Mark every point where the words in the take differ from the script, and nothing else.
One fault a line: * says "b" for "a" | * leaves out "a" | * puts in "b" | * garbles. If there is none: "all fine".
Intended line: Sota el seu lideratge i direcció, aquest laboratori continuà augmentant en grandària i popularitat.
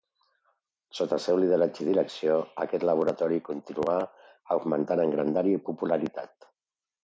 all fine